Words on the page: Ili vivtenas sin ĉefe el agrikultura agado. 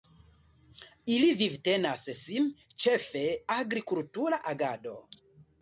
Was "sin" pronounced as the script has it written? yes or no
yes